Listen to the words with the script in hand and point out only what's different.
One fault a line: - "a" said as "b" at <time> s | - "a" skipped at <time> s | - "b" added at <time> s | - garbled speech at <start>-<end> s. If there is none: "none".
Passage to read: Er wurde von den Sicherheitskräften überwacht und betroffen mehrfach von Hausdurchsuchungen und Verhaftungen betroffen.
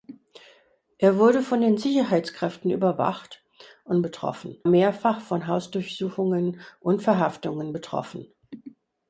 none